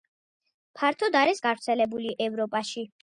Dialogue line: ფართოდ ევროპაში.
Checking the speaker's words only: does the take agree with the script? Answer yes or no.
no